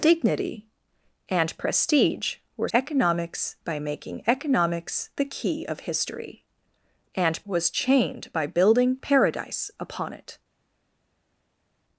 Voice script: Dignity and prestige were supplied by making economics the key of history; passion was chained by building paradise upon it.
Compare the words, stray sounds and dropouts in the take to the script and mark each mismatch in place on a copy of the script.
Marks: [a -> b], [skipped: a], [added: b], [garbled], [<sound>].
Dignity and prestige were [supplied -> economics] by making economics the key of history; [passion -> and] was chained by building paradise upon it.